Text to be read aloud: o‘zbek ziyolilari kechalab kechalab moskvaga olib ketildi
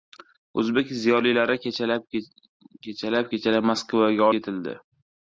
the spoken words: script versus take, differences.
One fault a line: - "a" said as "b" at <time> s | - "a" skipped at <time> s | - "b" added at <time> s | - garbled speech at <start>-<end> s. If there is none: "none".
- "olib" skipped at 4.3 s